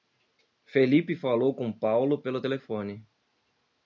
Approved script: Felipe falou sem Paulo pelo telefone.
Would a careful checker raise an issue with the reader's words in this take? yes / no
yes